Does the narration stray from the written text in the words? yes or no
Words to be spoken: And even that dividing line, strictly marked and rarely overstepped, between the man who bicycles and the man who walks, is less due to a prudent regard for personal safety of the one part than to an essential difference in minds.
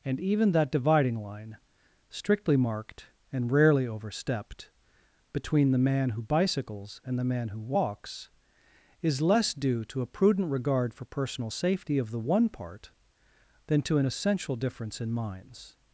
no